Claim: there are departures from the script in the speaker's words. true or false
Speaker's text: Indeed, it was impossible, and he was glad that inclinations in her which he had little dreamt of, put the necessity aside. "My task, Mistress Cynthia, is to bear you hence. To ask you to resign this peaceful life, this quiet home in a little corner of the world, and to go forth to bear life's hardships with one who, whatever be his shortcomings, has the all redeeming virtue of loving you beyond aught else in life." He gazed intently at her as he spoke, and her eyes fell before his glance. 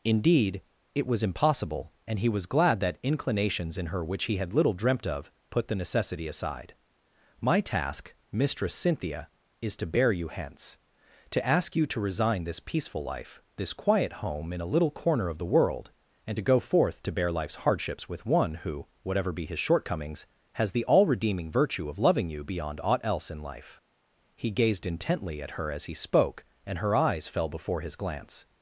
false